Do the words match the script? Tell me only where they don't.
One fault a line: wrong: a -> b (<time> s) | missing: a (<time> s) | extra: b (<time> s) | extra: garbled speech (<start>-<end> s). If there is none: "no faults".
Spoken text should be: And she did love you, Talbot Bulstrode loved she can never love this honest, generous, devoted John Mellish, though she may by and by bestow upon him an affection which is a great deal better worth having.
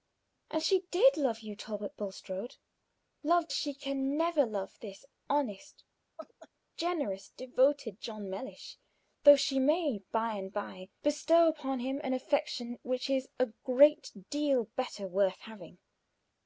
no faults